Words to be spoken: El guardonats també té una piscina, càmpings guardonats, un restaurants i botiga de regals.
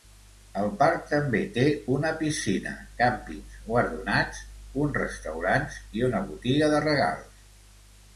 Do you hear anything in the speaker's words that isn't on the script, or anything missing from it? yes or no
yes